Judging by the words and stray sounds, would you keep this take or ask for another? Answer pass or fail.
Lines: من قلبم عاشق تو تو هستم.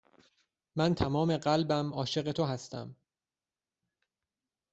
fail